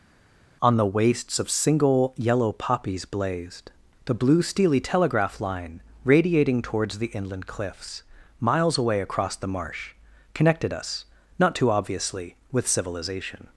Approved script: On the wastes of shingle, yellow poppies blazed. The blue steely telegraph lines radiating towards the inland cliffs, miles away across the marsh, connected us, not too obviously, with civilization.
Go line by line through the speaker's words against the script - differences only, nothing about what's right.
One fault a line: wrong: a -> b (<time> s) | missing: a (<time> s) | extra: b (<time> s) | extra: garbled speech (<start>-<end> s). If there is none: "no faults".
wrong: shingle -> single (1.5 s)
wrong: lines -> line (5.4 s)